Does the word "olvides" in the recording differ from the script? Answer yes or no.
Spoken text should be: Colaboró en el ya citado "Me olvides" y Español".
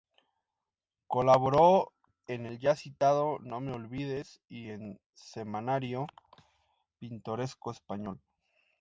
no